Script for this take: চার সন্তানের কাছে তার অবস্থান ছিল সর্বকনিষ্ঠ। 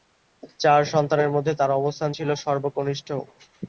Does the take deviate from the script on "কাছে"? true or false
true